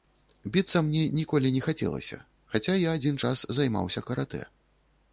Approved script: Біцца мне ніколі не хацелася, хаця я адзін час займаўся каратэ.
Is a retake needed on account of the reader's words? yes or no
no